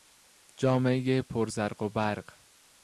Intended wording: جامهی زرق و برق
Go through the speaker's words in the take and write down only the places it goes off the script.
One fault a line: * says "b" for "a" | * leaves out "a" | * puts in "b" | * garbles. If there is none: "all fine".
* puts in "پر"